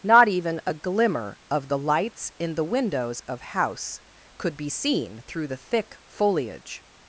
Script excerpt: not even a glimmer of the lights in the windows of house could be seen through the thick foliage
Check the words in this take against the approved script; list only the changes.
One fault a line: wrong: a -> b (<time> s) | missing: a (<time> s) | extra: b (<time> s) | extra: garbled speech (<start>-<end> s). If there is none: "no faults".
no faults